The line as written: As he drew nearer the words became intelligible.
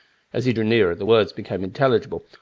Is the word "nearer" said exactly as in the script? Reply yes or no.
yes